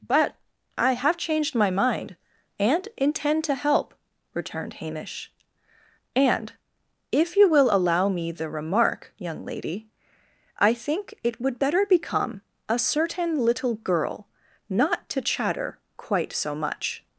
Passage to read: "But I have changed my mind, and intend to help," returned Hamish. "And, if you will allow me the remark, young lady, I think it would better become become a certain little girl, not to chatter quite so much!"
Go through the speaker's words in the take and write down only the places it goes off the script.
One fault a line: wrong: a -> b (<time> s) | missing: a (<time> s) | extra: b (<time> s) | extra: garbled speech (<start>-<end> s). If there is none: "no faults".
missing: become (12.4 s)